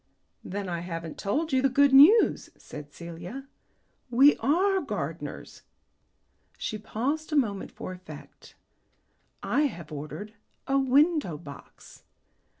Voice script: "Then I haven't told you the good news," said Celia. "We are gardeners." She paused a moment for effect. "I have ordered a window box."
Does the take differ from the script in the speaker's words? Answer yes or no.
no